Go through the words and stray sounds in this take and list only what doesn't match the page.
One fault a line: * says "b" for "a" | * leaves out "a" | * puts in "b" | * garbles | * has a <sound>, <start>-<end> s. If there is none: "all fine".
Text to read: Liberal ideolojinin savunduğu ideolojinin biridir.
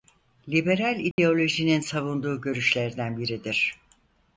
* has a dropout, 1.1-1.2 s
* says "görüşlerden" for "ideolojinin"